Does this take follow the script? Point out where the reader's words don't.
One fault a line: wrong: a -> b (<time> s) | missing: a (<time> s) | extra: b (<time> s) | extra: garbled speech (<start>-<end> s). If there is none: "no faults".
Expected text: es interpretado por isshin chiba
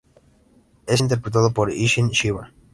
no faults